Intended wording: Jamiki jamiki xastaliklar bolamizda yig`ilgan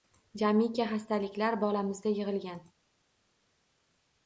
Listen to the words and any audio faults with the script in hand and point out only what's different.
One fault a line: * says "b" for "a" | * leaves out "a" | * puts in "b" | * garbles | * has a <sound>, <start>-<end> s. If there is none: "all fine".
* leaves out "jamiki"